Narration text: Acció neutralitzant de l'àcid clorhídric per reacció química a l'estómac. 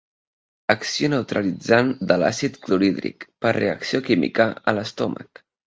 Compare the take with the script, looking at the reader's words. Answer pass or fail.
pass